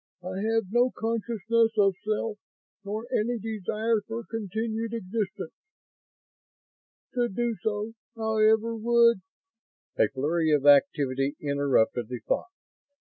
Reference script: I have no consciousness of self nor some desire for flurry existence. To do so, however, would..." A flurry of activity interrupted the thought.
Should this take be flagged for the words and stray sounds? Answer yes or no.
yes